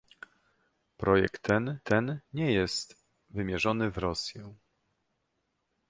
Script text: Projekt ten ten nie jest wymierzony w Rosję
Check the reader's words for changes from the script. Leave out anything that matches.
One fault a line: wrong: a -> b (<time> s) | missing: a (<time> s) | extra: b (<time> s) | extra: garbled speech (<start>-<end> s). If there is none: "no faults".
no faults